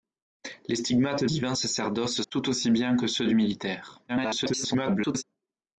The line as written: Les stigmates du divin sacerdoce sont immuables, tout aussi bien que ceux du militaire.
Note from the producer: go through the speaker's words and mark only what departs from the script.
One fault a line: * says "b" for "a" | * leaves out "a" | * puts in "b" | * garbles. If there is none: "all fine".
* leaves out "du"
* leaves out "sont immuables"
* garbles